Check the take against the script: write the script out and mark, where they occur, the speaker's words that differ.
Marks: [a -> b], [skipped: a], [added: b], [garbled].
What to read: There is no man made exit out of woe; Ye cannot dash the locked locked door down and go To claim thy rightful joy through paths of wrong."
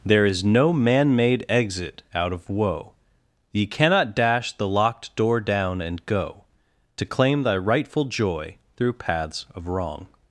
There is no man made exit out of woe; Ye cannot dash the locked [skipped: locked] door down and go To claim thy rightful joy through paths of wrong."